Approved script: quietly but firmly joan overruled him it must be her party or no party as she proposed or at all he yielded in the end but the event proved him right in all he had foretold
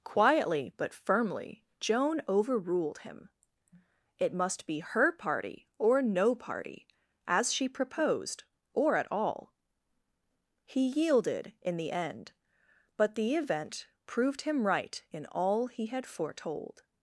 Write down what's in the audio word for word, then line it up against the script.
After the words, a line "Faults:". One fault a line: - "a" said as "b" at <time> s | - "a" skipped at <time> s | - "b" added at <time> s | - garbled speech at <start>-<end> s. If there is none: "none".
quietly but firmly joan overruled him it must be her party or no party as she proposed or at all he yielded in the end but the event proved him right in all he had foretold
Faults:
none